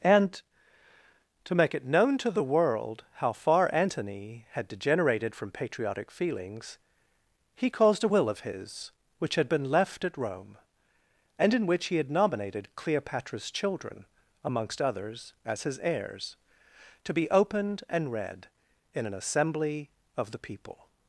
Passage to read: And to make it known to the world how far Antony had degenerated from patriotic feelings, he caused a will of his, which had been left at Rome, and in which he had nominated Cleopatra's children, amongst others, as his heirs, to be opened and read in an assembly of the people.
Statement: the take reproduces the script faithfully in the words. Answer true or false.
true